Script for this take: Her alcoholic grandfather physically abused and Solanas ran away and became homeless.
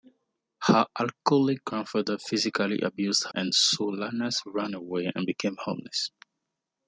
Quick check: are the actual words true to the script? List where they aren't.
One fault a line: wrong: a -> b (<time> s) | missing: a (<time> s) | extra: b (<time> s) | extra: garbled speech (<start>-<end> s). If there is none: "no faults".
no faults